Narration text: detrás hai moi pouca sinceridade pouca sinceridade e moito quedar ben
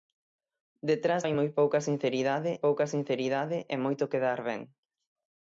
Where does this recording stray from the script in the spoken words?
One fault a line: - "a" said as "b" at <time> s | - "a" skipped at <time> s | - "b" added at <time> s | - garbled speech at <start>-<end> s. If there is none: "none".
none